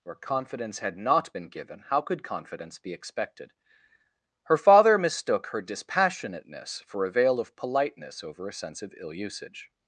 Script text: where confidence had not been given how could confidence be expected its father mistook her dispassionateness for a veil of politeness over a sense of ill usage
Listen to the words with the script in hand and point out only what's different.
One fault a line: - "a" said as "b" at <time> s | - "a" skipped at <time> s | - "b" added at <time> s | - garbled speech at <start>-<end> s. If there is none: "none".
- "its" said as "her" at 4.4 s